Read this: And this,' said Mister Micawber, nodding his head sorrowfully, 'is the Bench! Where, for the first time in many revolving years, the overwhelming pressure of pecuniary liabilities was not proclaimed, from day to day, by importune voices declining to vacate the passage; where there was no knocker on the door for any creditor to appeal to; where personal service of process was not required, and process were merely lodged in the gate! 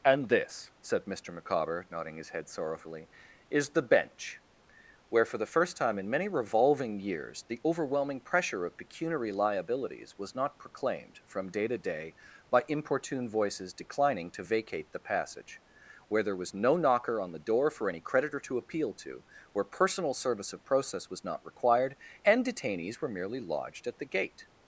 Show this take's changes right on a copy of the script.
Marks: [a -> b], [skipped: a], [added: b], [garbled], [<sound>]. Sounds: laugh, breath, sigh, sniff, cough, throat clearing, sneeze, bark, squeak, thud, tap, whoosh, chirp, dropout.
And this,' said Mister Micawber, nodding his head sorrowfully, 'is the Bench! Where, for the first time in many revolving years, the overwhelming pressure of pecuniary liabilities was not proclaimed, from day to day, by importune voices declining to vacate the passage; where there was no knocker on the door for any creditor to appeal to; where personal service of process was not required, and [process -> detainees] were merely lodged [in -> at] the gate!